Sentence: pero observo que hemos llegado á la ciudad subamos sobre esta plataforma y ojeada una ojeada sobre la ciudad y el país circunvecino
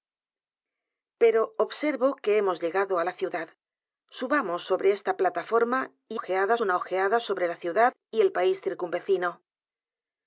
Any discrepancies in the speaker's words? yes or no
no